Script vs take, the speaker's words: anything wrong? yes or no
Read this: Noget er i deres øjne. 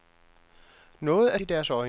no